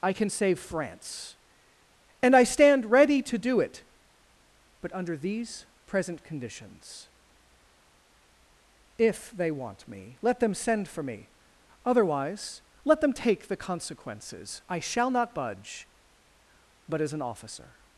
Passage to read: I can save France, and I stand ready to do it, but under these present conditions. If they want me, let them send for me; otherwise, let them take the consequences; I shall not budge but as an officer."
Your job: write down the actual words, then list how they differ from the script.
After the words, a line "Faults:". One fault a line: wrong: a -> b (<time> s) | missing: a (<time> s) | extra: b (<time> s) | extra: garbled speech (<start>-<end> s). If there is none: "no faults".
I can save France, and I stand ready to do it, but under these present conditions. If they want me, let them send for me; otherwise, let them take the consequences; I shall not budge but as an officer."
Faults:
no faults